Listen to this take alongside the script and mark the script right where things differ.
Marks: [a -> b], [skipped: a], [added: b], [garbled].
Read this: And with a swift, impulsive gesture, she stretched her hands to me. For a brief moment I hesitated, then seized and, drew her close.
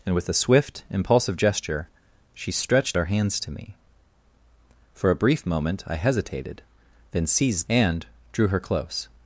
And with a swift, impulsive gesture, she stretched her hands to me. For a brief moment I hesitated, then seized and, drew her close.